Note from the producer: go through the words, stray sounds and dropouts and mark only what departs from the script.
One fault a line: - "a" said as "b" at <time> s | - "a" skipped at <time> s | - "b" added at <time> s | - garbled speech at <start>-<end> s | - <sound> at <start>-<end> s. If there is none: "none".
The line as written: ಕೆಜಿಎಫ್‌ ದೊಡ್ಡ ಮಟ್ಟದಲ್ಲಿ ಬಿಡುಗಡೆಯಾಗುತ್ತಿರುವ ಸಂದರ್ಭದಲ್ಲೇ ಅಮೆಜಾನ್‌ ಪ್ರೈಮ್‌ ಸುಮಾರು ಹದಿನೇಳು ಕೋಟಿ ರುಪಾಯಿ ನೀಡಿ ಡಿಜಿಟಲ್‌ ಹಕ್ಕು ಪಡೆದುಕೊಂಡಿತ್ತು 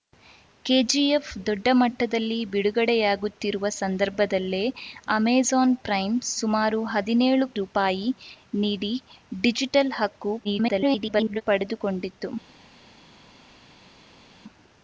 - "ಕೋಟಿ" skipped at 7.5 s
- garbled speech at 10.4-11.4 s